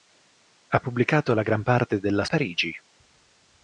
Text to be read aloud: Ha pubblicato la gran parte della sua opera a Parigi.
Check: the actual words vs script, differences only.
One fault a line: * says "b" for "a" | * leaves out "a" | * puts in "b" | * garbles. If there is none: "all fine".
* leaves out "sua opera a"